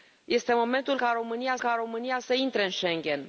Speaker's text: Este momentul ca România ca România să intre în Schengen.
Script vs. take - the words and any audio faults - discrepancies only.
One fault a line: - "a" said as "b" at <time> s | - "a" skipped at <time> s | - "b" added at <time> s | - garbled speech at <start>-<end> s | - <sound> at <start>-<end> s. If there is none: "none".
none